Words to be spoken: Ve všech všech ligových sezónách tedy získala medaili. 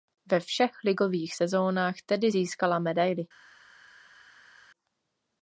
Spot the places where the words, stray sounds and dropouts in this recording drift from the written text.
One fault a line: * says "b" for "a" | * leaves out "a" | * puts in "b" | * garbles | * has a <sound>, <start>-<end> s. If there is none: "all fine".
* leaves out "všech"